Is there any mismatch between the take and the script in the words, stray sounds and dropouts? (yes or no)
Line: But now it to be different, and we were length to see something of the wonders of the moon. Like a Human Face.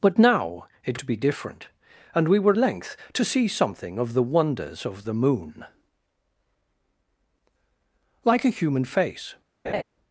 yes